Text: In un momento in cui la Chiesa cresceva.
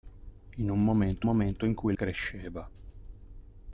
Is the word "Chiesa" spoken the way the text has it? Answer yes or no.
no